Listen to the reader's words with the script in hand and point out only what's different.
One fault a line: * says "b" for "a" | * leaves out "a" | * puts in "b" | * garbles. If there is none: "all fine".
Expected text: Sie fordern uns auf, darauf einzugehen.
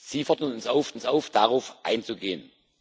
* puts in "uns auf"